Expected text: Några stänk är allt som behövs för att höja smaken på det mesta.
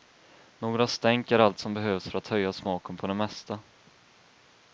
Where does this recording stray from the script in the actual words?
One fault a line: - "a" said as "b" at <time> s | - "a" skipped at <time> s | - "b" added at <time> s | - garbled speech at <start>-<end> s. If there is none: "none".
none